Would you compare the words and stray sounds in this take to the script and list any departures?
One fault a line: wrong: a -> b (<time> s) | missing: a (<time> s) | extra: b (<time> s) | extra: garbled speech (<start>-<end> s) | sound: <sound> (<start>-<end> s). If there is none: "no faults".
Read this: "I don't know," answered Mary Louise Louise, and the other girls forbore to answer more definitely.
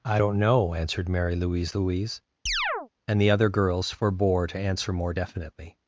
sound: chirp (2.5-2.9 s)